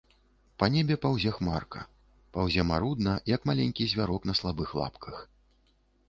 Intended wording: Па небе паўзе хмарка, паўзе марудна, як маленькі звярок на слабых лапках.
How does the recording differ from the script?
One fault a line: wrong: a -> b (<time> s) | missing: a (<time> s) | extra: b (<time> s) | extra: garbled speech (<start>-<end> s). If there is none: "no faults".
no faults